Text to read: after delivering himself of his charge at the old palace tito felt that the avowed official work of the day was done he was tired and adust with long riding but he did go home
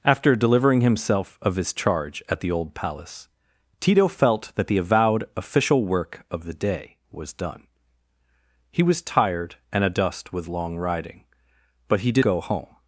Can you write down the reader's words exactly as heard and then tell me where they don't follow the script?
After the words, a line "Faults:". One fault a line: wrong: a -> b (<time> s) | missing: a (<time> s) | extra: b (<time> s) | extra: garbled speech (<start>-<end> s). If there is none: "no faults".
after delivering himself of his charge at the old palace tito felt that the avowed official work of the day was done he was tired and adust with long riding but he did go home
Faults:
no faults